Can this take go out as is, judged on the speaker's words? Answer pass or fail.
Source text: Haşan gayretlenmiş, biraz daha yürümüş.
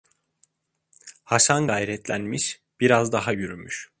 pass